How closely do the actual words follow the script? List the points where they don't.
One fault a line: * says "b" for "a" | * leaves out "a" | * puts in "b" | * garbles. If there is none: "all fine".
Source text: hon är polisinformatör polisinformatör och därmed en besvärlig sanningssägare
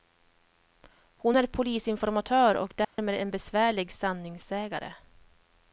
* leaves out "polisinformatör"